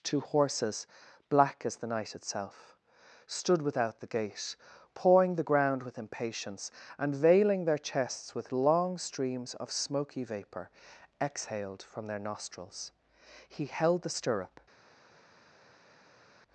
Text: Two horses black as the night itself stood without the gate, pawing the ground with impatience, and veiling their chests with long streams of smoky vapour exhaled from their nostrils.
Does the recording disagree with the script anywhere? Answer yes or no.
yes